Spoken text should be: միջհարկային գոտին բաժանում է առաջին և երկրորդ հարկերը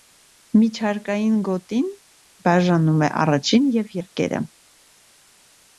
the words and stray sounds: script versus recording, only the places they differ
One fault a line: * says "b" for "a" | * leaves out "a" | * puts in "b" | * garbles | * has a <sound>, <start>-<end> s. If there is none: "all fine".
* leaves out "երկրորդ"